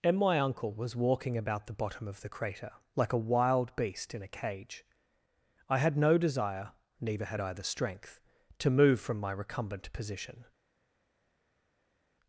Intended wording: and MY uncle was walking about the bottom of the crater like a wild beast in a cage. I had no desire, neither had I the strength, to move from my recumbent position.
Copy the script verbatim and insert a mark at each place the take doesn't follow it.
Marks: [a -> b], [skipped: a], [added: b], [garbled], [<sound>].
and MY uncle was walking about the bottom of the crater like a wild beast in a cage. I had no desire, neither had I the strength, to move from my recumbent position.